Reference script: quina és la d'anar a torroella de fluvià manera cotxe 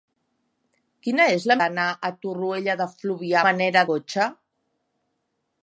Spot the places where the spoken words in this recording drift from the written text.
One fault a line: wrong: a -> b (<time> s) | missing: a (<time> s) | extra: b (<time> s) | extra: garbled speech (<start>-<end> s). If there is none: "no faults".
no faults